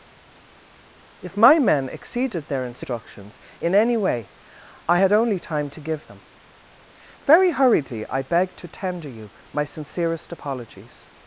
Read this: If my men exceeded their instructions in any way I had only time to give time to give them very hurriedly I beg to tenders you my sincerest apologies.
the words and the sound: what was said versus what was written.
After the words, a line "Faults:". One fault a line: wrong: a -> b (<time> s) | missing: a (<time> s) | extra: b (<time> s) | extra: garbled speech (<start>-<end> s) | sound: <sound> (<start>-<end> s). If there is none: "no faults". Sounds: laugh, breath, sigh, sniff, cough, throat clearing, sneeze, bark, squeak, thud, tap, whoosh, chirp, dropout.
If my men exceeded their instructions in any way I had only time to give them very hurriedly I beg to tender you my sincerest apologies.
Faults:
missing: time to give (6.1 s)
wrong: tenders -> tender (8.7 s)